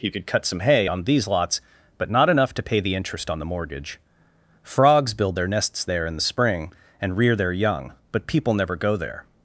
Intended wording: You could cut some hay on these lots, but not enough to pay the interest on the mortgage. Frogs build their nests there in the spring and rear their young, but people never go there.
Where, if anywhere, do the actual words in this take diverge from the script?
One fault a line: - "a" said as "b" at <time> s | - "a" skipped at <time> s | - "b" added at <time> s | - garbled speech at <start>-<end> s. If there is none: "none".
none